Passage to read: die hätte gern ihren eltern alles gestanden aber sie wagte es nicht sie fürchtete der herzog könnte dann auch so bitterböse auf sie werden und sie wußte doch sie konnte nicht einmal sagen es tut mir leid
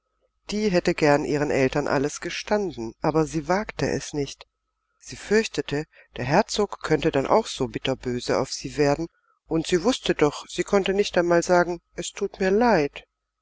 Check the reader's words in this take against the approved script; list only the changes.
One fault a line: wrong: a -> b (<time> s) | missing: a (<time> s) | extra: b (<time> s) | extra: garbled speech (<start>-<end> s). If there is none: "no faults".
no faults